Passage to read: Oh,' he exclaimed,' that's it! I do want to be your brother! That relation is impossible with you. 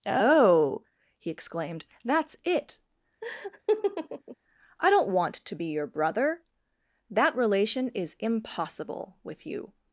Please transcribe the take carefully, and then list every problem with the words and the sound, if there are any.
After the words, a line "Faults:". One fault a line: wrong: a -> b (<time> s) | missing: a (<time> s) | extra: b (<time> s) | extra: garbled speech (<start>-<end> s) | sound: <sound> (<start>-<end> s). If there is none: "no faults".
Oh,' he exclaimed,' that's it! I don't want to be your brother! That relation is impossible with you.
Faults:
sound: laugh (3.2-4.4 s)
wrong: do -> don't (4.9 s)